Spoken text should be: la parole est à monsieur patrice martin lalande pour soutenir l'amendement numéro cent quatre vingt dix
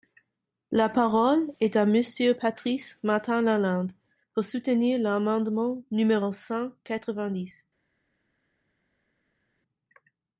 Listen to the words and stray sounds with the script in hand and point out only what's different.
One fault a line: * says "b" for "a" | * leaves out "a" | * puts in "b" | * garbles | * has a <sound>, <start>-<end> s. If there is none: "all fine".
all fine